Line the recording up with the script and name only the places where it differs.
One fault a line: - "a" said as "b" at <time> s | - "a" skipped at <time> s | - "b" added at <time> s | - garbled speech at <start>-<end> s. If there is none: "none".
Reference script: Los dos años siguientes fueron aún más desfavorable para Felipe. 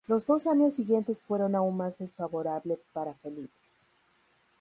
none